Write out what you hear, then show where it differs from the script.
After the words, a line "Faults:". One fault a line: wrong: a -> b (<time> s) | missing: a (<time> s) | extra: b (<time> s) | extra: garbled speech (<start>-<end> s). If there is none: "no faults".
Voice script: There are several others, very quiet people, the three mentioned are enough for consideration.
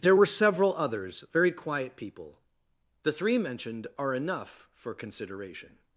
There were several others, very quiet people, the three mentioned are enough for consideration.
Faults:
wrong: are -> were (0.1 s)